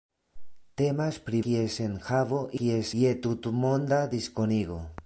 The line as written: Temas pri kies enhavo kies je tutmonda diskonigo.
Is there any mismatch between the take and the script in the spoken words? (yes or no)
no